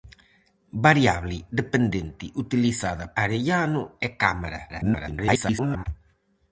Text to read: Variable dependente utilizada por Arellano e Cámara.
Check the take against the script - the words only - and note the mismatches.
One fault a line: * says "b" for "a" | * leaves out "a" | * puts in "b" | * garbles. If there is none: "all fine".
* leaves out "por"
* garbles